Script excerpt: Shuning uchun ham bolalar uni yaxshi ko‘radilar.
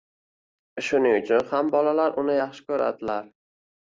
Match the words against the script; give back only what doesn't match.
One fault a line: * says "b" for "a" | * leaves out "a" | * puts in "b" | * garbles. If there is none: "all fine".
all fine